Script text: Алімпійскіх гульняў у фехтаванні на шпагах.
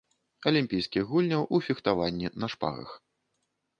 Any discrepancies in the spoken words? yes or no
no